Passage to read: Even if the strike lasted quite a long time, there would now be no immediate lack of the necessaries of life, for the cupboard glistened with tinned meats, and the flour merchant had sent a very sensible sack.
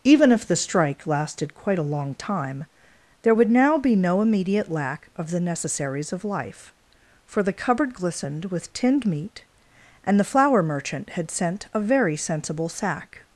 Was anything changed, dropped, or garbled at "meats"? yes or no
yes